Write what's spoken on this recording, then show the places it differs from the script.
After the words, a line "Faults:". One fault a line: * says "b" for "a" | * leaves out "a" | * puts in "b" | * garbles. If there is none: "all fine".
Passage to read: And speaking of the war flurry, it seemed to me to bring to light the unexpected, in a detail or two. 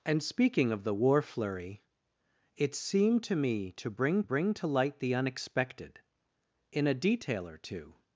And speaking of the war flurry, it seemed to me to bring bring to light the unexpected, in a detail or two.
Faults:
* puts in "bring"